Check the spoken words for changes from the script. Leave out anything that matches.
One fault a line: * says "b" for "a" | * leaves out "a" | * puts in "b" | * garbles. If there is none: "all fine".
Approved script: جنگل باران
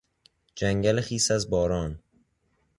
* puts in "خیس از"